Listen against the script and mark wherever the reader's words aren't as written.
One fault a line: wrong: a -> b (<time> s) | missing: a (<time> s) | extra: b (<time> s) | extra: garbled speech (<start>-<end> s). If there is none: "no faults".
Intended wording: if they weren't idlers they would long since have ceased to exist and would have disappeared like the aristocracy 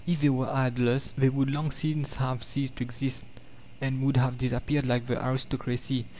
wrong: weren't -> were (0.3 s)